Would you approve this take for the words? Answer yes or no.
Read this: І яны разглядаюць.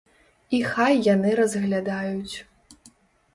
no